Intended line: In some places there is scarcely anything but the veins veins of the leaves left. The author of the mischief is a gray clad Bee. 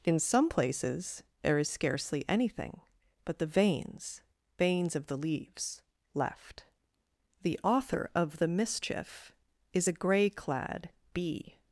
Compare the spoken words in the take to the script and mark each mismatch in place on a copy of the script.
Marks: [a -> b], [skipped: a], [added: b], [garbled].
In some places there is scarcely anything but the veins veins of the leaves left. The author of the mischief is a gray clad Bee.